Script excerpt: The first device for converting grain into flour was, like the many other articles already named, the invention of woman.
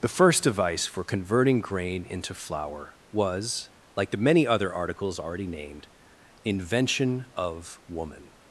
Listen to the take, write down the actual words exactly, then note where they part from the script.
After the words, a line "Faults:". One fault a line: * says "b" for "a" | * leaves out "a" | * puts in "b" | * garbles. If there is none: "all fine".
The first device for converting grain into flour was, like the many other articles already named, invention of woman.
Faults:
* leaves out "the"